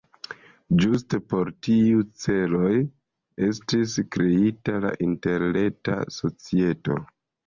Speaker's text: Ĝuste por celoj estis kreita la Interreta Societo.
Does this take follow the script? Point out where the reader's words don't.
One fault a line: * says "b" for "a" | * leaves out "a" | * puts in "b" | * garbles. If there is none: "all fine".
* puts in "tiuj"